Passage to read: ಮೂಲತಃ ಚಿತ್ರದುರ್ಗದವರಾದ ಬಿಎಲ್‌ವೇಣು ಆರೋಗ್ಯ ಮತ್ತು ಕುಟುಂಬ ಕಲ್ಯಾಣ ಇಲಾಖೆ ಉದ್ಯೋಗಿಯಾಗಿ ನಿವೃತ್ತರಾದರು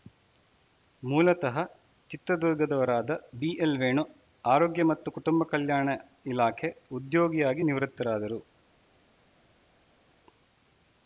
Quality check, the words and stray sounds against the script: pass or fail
pass